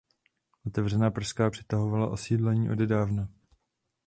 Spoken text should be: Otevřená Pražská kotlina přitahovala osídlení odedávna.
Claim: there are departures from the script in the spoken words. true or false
true